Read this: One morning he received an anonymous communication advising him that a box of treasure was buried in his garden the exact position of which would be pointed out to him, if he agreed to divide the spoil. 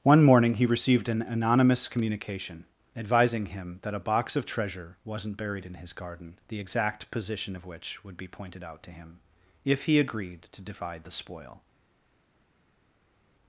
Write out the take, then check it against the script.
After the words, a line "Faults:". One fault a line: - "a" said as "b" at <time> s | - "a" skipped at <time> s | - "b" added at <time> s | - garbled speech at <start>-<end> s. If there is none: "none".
One morning he received an anonymous communication advising him that a box of treasure wasn't buried in his garden the exact position of which would be pointed out to him, if he agreed to divide the spoil.
Faults:
- "was" said as "wasn't" at 5.0 s